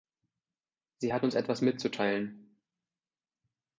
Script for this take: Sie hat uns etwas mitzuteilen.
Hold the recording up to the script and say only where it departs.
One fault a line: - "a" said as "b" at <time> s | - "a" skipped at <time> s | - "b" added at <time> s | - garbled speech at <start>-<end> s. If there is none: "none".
none